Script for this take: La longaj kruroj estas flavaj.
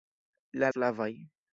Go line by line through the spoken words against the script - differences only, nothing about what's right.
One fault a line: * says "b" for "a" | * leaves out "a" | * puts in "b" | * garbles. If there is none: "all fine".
* leaves out "longaj kruroj estas"